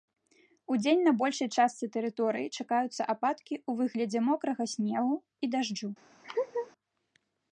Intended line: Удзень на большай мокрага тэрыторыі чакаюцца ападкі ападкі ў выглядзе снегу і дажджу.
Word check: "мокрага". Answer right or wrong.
wrong